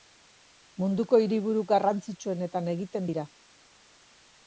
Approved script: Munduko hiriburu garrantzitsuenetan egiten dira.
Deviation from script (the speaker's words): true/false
false